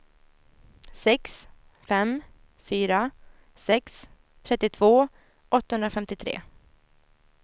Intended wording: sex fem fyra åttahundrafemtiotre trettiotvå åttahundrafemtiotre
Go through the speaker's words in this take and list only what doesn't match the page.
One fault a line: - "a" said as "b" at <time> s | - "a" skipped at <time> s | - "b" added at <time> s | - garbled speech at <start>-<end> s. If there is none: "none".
- "åttahundrafemtiotre" said as "sex" at 3.6 s